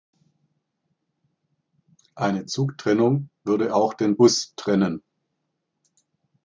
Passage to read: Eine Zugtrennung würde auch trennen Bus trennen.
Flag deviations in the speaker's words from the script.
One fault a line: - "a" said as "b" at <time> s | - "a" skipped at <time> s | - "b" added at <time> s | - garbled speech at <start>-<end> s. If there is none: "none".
- "trennen" said as "den" at 3.9 s